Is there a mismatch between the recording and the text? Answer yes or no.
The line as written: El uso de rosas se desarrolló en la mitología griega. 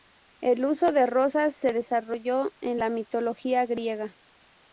no